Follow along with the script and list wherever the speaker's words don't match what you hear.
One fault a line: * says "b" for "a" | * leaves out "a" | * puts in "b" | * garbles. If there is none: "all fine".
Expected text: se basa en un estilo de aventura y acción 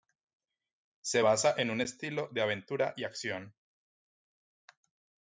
all fine